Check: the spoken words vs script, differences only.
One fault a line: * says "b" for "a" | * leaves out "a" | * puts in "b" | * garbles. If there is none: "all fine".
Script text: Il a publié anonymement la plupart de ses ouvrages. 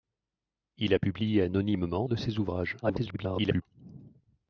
* leaves out "la plupart"
* garbles